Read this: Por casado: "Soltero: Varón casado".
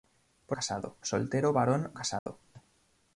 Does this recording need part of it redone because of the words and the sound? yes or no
yes